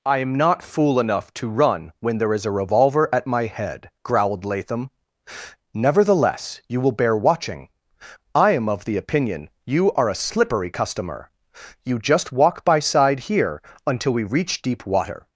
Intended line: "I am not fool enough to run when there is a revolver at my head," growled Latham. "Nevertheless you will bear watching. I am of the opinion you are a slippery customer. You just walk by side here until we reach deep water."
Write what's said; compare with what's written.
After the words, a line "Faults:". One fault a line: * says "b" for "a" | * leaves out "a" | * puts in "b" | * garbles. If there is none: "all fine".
"I am not fool enough to run when there is a revolver at my head," growled Latham. "Nevertheless you will bear watching. I am of the opinion you are a slippery customer. You just walk by side here until we reach deep water."
Faults:
all fine